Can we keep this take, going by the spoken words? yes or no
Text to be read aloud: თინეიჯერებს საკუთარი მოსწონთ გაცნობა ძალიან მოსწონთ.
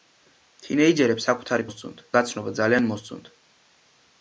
yes